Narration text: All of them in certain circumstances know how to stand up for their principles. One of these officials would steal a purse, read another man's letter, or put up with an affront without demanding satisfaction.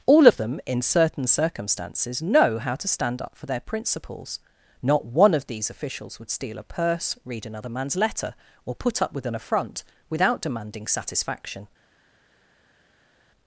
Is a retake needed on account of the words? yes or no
yes